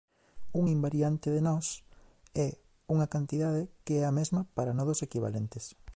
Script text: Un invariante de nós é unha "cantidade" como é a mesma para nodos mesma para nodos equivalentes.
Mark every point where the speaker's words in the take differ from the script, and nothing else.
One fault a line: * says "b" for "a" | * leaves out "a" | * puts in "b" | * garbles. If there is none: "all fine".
* says "que" for "como"
* leaves out "mesma para nodos"